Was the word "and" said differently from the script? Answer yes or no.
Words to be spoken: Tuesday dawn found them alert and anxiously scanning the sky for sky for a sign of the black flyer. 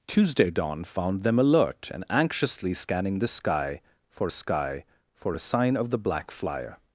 no